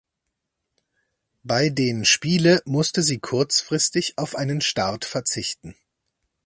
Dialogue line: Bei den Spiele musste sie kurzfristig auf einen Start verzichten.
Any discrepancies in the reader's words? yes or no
no